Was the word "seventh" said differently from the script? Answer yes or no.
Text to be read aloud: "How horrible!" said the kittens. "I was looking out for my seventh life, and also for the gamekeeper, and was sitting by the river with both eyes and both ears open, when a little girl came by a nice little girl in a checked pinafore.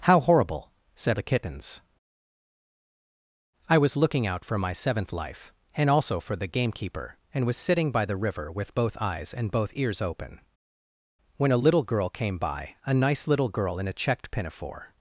no